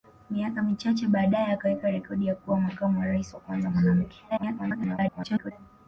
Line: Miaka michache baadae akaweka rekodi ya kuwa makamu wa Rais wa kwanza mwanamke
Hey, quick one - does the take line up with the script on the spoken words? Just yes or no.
no